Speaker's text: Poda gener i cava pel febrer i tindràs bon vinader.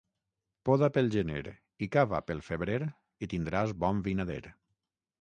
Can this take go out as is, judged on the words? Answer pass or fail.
fail